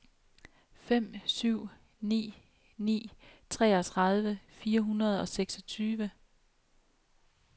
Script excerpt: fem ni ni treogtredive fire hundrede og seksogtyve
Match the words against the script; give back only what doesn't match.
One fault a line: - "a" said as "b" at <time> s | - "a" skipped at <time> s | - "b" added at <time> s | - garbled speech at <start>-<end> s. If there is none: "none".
- "syv" added at 1.2 s